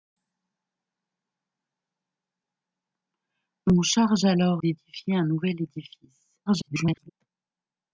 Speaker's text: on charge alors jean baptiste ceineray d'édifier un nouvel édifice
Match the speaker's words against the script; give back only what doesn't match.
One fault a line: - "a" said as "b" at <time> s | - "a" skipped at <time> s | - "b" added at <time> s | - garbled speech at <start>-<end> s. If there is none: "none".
- "jean baptiste ceineray" skipped at 4.6 s
- garbled speech at 6.5-7.1 s